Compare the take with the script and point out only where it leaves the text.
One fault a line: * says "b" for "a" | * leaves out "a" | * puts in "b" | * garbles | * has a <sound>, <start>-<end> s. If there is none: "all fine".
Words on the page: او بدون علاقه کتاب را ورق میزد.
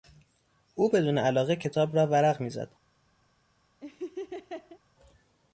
* has a laugh, 3.8-4.8 s